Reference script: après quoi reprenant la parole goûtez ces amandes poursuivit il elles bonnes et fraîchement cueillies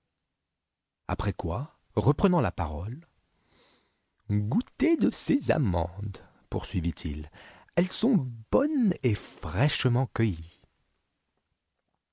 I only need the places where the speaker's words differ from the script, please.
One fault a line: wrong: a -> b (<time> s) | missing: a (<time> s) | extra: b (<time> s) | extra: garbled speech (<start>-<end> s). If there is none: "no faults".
extra: de (5.0 s)
extra: sont (7.9 s)